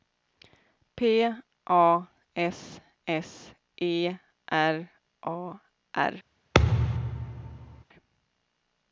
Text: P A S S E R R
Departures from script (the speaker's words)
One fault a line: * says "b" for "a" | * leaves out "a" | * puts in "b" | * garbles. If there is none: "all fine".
* puts in "A"